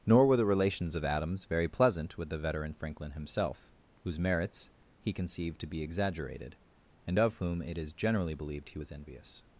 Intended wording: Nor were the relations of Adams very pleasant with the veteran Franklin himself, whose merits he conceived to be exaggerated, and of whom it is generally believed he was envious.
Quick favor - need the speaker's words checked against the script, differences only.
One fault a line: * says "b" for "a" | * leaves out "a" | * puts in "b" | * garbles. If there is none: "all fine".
all fine